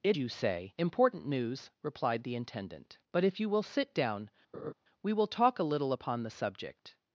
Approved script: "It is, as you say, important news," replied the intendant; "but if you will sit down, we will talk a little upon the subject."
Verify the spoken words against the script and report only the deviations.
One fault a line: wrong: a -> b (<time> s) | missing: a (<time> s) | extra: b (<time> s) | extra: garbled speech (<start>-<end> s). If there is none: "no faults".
missing: is as (0.2 s)